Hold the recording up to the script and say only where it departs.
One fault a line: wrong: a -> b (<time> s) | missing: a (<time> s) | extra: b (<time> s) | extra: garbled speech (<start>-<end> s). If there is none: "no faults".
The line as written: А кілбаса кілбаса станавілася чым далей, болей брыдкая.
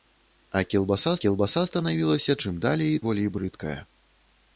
no faults